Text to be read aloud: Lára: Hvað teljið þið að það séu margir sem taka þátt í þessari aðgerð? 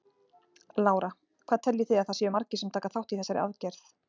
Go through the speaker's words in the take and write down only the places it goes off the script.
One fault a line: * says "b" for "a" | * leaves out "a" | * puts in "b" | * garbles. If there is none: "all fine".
all fine